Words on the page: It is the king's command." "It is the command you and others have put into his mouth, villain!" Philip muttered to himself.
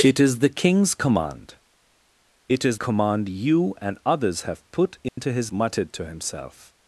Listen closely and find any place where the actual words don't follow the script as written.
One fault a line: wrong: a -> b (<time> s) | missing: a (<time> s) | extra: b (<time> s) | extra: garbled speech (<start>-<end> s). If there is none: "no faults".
missing: the (2.8 s)
missing: mouth villain Philip (5.5 s)